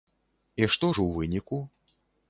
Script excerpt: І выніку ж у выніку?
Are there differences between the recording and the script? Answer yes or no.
yes